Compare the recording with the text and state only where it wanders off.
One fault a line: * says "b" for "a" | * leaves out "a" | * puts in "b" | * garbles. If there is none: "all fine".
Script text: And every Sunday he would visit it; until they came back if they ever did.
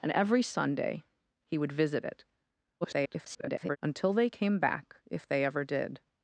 * garbles